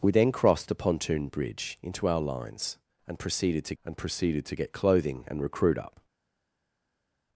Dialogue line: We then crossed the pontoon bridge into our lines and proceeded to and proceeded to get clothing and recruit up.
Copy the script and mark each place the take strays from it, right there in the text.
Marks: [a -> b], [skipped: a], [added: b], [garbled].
We then crossed the pontoon bridge into our lines and proceeded to and proceeded to get clothing and recruit up.